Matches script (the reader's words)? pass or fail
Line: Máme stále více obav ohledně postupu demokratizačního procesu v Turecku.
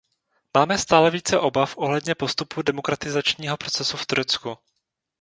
pass